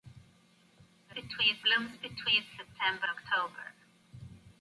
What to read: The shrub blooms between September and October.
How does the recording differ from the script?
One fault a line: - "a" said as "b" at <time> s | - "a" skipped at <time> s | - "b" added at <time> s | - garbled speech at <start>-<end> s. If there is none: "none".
- "shrub" said as "between" at 1.1 s
- "and" skipped at 3.1 s